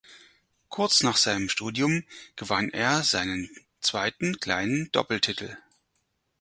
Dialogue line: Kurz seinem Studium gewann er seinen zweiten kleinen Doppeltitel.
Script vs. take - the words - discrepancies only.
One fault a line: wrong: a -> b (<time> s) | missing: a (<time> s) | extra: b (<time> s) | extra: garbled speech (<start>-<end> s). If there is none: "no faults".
extra: nach (1.0 s)